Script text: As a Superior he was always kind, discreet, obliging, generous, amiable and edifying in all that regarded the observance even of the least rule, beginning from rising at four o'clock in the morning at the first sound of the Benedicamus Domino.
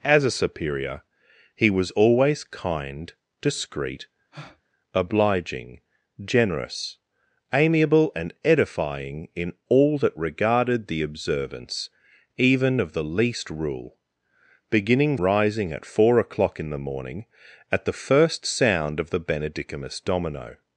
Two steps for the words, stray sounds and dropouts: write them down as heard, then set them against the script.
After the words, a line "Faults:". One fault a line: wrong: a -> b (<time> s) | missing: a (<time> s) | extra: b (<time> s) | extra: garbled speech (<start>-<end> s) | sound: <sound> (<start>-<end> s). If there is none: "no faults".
As a Superior he was always kind, discreet, obliging, generous, amiable and edifying in all that regarded the observance even of the least rule, beginning rising at four o'clock in the morning at the first sound of the Benedicamus Domino.
Faults:
sound: breath (4.3-4.6 s)
missing: from (15.2 s)